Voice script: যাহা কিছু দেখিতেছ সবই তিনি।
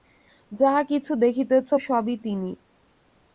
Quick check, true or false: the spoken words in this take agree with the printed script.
true